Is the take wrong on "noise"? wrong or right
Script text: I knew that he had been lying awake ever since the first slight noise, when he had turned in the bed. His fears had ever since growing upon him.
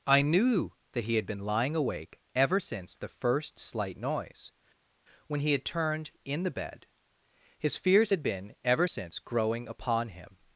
right